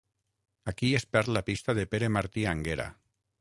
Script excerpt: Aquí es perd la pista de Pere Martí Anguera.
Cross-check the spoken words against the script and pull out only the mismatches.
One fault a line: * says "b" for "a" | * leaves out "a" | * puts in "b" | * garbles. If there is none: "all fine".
all fine